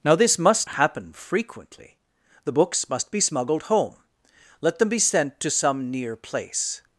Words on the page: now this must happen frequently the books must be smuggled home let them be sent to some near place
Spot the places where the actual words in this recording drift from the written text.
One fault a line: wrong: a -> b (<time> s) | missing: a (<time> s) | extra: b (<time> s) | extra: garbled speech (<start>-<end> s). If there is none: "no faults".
no faults